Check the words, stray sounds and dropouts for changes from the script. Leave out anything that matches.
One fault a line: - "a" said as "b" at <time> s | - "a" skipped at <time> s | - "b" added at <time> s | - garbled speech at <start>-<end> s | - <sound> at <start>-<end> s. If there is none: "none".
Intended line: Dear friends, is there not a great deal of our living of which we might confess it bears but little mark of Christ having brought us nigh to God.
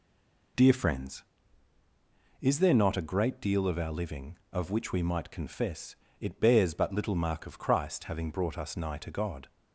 none